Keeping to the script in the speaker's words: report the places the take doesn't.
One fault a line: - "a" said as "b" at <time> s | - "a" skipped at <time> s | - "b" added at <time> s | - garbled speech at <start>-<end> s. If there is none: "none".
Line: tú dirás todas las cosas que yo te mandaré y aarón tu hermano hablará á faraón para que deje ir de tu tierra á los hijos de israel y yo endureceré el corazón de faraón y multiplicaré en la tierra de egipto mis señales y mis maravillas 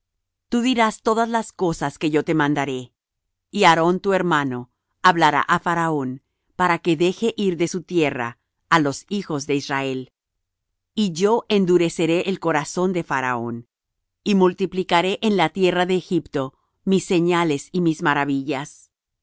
- "tu" said as "su" at 7.7 s